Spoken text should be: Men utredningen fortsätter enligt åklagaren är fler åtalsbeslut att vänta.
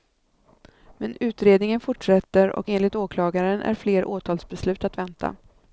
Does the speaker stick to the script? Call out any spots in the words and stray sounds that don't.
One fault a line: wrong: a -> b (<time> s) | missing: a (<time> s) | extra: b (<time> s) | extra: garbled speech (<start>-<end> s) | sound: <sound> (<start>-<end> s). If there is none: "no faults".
extra: och (2.5 s)